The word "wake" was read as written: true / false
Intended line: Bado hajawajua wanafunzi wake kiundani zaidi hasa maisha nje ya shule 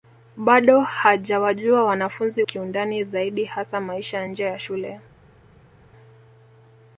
false